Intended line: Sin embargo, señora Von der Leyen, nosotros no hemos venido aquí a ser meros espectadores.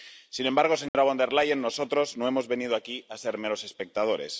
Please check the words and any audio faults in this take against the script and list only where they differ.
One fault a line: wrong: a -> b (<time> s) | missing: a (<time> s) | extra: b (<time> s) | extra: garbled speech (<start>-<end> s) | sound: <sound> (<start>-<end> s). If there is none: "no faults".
sound: dropout (0.9-0.9 s)